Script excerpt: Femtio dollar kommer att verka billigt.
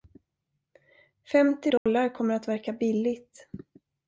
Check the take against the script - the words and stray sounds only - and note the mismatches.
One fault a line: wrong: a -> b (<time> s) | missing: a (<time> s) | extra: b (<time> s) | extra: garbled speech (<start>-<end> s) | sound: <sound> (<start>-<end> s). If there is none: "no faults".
sound: dropout (1.8-1.9 s)